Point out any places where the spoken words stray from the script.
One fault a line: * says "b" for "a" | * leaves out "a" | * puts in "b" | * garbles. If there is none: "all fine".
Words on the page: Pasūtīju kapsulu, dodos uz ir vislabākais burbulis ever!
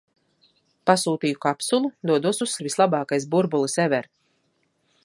all fine